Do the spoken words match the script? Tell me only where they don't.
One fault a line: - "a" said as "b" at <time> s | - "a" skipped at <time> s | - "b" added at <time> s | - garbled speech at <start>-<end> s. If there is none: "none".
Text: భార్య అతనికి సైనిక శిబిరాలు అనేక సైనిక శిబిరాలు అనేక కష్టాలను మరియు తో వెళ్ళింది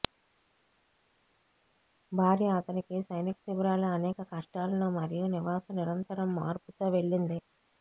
- "సైనిక శిబిరాలు అనేక కష్టాలను మరియు" said as "కష్టాలను మరియు నివాస నిరంతరం మార్పు" at 4.3 s